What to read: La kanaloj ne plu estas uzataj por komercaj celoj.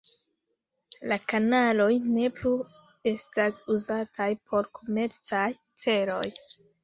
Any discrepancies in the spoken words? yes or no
no